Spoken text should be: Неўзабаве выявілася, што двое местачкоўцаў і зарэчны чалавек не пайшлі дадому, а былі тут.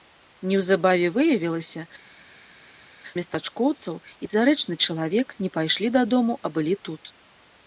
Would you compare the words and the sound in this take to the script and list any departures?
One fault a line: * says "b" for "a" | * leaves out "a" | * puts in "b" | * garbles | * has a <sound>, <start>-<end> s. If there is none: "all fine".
* leaves out "што двое"